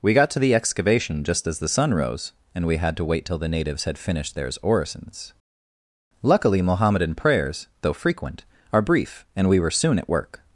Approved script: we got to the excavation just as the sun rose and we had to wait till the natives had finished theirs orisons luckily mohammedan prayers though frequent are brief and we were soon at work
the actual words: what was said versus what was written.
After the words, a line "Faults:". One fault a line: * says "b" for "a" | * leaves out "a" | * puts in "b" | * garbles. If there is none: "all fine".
we got to the excavation just as the sun rose and we had to wait till the natives had finished theirs orisons luckily mohammedan prayers though frequent are brief and we were soon at work
Faults:
all fine